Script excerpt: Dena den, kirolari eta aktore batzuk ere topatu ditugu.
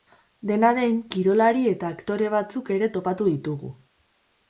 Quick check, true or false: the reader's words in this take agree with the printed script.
true